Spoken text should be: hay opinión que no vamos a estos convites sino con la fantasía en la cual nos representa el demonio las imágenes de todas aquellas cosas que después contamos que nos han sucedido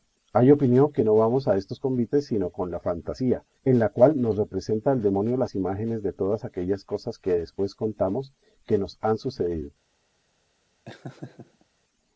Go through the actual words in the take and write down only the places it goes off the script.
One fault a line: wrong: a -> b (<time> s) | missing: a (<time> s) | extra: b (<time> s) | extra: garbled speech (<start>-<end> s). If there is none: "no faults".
no faults